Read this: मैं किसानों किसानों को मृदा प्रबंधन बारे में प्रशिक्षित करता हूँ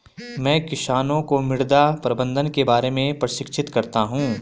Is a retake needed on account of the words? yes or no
yes